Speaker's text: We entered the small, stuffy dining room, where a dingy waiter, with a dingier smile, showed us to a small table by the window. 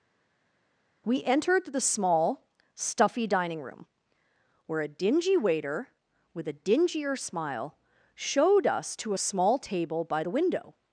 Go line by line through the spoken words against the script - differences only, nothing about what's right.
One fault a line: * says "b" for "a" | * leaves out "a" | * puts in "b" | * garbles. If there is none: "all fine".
all fine